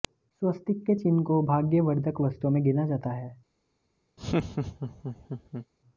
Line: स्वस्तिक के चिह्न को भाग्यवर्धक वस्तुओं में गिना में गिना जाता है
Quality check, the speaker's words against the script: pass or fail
fail